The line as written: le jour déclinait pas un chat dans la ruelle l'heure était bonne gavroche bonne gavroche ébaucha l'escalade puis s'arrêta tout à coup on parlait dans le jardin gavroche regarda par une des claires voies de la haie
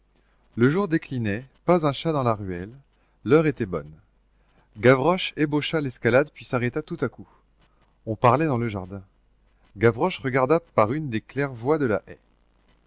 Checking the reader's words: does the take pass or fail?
fail